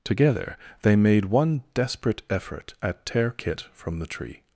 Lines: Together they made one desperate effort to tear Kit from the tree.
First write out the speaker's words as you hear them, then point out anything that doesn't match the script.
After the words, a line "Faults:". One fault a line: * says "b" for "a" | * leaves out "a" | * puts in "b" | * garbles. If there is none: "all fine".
Together they made one desperate effort at tear Kit from the tree.
Faults:
* says "at" for "to"